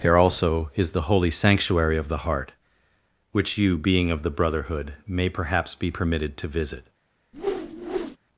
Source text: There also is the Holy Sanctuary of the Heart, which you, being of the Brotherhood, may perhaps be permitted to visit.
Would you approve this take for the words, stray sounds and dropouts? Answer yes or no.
no